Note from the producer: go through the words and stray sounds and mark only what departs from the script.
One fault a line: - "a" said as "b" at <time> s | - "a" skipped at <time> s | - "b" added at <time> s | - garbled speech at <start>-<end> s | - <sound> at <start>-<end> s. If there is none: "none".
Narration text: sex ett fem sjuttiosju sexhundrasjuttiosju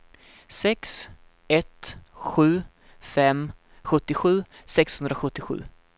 - "sju" added at 2.1 s